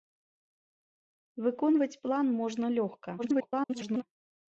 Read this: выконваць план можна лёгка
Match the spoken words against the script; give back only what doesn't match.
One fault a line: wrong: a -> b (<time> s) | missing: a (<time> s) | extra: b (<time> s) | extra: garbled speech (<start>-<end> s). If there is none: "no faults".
extra: garbled speech (3.2-4.0 s)